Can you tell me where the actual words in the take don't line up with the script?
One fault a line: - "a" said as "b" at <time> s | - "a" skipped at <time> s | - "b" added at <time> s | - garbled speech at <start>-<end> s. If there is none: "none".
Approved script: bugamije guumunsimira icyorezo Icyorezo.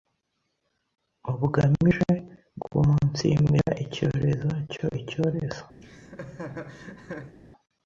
- "cyo" added at 4.7 s